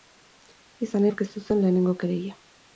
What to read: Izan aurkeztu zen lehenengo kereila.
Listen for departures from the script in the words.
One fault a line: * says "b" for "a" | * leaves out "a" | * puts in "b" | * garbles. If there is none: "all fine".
all fine